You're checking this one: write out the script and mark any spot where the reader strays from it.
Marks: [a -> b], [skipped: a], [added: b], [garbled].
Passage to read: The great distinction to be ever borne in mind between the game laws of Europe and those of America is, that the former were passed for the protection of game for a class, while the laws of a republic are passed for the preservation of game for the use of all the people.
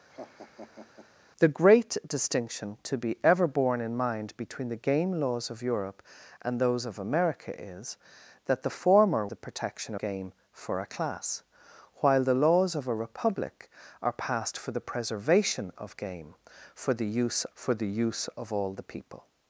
The great distinction to be ever borne in mind between the game laws of Europe and those of America is, that the former [skipped: were passed for] the protection [skipped: of] game for a class, while the laws of a republic are passed for the preservation of game for the use [added: for the use] of all the people.